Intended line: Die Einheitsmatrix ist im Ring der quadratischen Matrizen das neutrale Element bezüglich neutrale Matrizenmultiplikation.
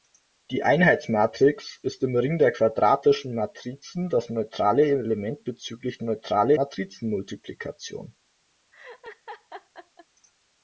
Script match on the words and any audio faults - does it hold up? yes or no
no